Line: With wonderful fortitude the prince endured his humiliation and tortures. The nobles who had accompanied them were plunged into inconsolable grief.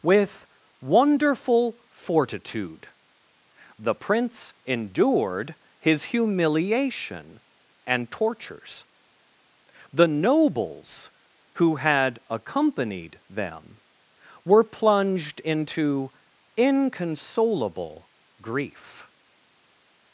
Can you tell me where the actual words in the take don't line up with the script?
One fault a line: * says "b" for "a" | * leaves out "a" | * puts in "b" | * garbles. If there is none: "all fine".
all fine